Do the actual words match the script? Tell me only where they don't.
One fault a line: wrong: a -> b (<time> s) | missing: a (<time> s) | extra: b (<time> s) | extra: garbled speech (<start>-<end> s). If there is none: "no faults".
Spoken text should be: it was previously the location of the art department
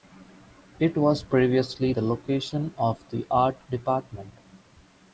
no faults